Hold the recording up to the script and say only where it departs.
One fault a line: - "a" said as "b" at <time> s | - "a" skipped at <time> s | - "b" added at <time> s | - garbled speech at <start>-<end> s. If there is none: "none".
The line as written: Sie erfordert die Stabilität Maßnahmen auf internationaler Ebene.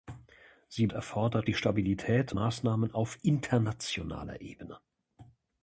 none